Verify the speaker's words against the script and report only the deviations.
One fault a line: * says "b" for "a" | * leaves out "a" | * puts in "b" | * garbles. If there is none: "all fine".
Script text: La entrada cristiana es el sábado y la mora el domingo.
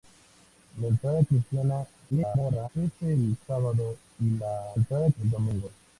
* garbles
* says "entrada" for "mora"